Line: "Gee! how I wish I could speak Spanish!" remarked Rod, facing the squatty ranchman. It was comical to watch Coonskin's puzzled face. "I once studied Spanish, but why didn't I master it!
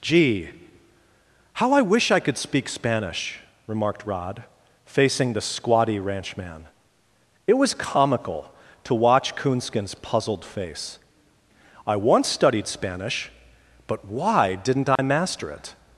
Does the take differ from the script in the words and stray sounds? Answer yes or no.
yes